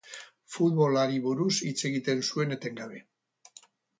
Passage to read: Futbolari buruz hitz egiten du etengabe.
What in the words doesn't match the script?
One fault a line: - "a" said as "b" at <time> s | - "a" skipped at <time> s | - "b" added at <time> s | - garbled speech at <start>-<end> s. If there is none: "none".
- "du" said as "zuen" at 2.3 s